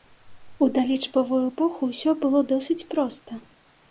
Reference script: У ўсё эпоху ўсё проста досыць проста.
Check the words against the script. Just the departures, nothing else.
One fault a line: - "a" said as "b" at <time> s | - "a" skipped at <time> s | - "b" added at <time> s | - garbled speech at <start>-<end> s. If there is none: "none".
- "ўсё" said as "далічбавую" at 0.8 s
- "проста" said as "было" at 2.2 s